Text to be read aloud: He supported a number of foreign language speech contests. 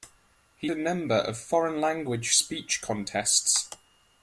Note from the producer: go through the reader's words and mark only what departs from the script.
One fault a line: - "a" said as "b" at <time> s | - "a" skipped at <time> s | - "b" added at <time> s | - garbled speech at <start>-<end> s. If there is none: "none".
- "supported" skipped at 0.7 s